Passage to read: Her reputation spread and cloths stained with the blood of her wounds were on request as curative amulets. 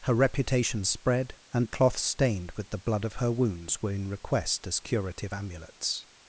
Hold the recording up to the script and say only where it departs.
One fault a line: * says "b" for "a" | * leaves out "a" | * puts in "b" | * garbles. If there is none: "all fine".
* says "in" for "on"